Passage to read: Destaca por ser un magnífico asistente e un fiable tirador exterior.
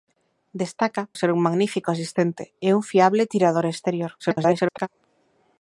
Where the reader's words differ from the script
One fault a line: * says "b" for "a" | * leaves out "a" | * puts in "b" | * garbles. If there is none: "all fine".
* leaves out "por"
* garbles